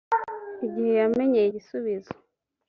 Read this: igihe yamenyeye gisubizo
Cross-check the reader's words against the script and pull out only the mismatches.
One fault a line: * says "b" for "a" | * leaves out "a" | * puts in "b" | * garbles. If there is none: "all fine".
all fine